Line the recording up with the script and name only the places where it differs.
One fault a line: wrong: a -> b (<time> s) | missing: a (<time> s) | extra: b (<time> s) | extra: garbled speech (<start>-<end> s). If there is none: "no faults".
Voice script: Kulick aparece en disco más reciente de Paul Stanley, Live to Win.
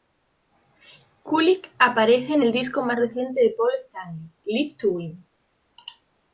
extra: el (2.4 s)